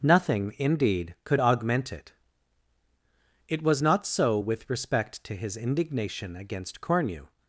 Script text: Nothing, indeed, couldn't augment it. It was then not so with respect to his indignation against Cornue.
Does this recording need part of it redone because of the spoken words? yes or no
yes